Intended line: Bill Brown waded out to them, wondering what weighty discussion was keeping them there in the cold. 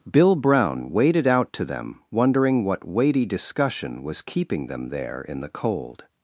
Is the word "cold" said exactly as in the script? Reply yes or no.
yes